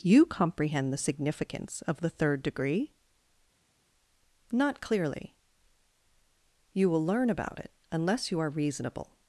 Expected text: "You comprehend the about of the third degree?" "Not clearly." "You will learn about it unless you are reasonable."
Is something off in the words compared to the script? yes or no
yes